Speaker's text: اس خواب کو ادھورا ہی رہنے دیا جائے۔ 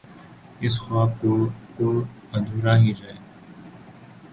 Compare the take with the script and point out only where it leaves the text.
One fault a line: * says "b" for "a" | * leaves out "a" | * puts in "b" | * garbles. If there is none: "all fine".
* puts in "کو"
* leaves out "رہنے دیا"